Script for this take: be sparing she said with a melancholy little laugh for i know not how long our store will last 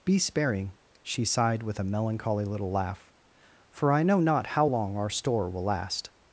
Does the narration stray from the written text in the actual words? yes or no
yes